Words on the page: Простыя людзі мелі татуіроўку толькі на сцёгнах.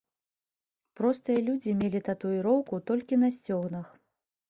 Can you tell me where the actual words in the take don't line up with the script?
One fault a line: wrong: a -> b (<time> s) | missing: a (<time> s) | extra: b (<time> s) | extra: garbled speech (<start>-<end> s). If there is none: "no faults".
no faults